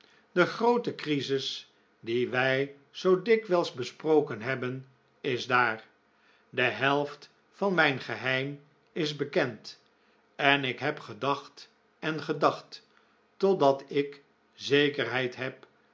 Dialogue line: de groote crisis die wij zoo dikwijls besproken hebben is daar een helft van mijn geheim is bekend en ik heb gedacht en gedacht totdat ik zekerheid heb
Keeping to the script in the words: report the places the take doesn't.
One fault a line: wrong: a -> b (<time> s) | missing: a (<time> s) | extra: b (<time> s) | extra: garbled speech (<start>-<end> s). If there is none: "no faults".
wrong: een -> de (6.5 s)